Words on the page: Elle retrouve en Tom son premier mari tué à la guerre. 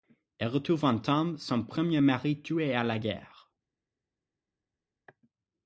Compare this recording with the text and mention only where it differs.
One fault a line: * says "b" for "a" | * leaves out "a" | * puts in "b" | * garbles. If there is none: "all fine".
all fine